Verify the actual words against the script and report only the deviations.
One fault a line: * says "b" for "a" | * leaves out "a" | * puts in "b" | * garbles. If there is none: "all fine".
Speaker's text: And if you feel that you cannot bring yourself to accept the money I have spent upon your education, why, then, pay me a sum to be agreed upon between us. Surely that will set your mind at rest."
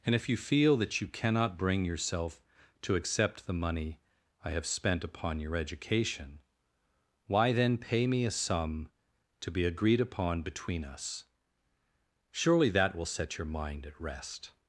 all fine